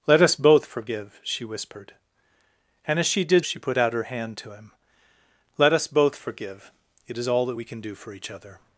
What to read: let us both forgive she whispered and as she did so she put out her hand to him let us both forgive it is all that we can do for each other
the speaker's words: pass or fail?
fail